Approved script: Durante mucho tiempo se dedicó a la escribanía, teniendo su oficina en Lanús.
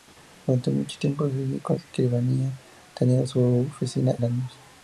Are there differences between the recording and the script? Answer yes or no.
yes